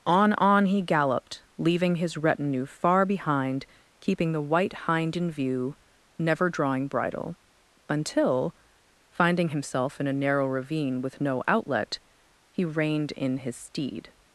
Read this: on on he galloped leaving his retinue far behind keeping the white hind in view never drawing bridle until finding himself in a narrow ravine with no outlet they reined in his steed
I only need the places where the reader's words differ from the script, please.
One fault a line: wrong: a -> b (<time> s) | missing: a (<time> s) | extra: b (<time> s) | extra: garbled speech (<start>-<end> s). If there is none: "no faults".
wrong: they -> he (12.5 s)